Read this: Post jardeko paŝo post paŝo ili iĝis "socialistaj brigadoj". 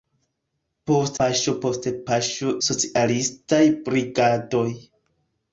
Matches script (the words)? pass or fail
fail